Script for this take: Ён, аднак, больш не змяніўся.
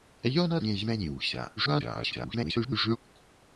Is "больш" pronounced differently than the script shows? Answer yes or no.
yes